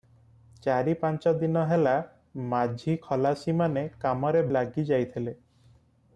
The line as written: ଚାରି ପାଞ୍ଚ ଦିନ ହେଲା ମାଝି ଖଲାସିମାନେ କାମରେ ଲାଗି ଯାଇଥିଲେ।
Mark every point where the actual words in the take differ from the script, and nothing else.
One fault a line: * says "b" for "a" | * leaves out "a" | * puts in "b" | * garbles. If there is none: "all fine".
all fine